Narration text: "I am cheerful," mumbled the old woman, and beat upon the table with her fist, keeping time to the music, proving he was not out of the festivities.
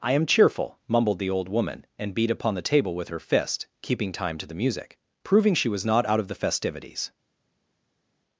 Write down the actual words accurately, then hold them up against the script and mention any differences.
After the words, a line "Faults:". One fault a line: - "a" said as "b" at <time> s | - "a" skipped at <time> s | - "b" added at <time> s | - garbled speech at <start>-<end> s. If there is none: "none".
"I am cheerful," mumbled the old woman, and beat upon the table with her fist, keeping time to the music, proving she was not out of the festivities.
Faults:
- "he" said as "she" at 5.5 s